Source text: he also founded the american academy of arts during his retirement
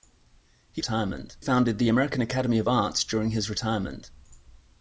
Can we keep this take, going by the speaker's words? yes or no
no